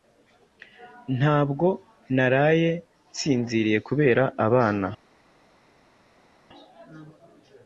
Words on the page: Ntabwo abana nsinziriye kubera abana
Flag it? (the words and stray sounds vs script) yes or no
yes